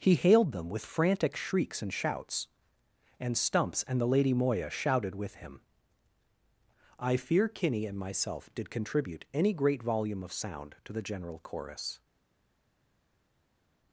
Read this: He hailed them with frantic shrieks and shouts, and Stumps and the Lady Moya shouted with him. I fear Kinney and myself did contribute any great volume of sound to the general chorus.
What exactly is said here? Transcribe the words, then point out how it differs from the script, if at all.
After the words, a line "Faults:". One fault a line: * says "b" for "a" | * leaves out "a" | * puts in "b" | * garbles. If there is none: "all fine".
He hailed them with frantic shrieks and shouts, and Stumps and the Lady Moya shouted with him. I fear Kinney and myself did contribute any great volume of sound to the general chorus.
Faults:
all fine